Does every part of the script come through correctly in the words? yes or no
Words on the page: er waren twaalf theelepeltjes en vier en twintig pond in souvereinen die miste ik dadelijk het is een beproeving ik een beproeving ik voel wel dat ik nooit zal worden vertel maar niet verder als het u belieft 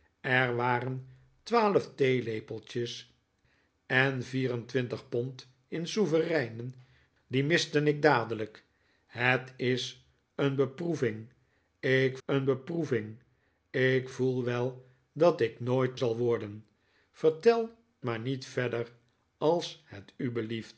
yes